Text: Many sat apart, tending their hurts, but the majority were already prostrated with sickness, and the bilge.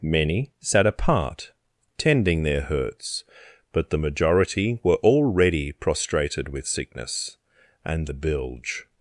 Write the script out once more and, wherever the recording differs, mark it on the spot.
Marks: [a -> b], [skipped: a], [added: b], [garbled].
Many sat apart, tending their hurts, but the majority were already prostrated with sickness, and the bilge.